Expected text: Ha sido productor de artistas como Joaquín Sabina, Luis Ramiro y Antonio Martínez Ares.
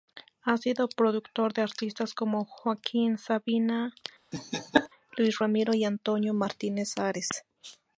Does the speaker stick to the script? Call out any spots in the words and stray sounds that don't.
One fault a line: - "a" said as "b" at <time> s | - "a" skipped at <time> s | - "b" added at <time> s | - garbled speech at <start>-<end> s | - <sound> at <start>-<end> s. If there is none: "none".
- laugh at 4.3-4.9 s